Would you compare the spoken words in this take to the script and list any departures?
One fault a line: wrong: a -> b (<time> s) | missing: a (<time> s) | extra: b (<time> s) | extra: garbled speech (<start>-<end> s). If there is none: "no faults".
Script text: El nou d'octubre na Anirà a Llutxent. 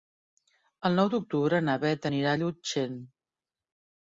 extra: Beth (1.8 s)